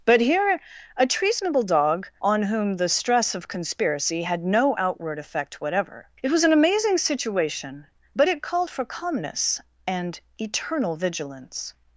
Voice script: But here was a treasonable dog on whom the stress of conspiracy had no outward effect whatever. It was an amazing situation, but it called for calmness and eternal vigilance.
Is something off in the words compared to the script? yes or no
yes